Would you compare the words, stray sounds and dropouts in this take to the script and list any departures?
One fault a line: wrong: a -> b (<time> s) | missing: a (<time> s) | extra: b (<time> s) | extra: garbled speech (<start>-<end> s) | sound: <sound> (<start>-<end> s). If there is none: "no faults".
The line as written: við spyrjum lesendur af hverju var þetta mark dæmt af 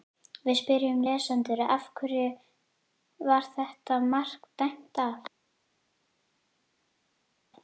no faults